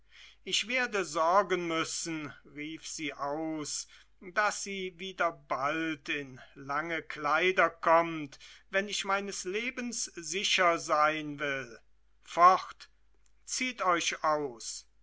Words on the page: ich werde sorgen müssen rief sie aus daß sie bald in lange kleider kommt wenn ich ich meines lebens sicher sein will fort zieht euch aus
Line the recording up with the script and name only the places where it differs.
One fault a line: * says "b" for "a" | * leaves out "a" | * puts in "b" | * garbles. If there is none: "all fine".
* puts in "wieder"
* leaves out "ich"